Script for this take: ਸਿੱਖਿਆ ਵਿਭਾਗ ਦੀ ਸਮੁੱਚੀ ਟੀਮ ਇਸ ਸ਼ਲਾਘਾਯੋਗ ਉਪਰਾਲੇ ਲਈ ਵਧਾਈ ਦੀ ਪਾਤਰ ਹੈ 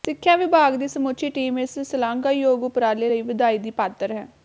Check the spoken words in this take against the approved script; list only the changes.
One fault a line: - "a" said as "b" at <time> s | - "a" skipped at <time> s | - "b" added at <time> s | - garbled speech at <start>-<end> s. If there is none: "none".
none